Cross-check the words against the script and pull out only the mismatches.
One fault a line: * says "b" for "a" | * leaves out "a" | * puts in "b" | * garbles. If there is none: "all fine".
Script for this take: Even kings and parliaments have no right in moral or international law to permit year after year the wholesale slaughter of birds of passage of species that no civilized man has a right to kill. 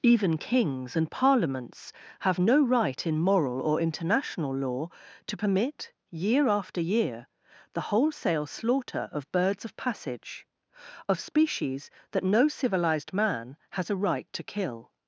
all fine